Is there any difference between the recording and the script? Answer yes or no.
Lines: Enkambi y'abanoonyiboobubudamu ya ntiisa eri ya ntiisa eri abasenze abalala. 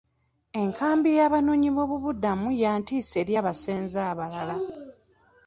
yes